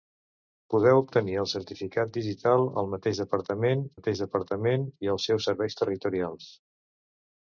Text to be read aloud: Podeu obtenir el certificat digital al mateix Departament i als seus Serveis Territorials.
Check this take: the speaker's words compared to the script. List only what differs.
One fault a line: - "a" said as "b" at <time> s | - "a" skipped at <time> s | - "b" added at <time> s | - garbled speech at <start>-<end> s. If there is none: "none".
- "mateix Departament" added at 4.0 s